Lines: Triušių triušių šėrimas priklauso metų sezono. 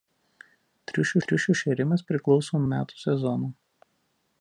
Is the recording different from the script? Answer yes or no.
no